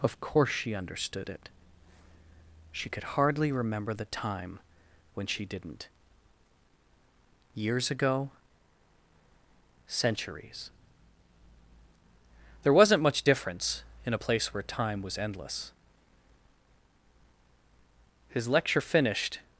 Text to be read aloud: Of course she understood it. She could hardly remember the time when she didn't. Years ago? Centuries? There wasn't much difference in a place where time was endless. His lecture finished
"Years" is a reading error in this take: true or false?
false